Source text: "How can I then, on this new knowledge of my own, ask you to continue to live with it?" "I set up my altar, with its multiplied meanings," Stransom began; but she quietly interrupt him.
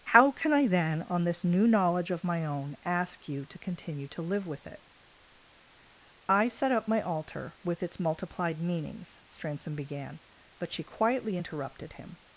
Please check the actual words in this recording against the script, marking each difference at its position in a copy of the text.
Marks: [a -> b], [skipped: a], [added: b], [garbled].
"How can I then, on this new knowledge of my own, ask you to continue to live with it?" "I set up my altar, with its multiplied meanings," Stransom began; but she quietly [interrupt -> interrupted] him.